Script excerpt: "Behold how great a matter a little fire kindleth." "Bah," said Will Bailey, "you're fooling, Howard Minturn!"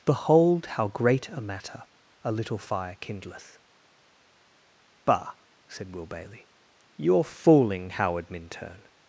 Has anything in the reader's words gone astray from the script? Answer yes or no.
no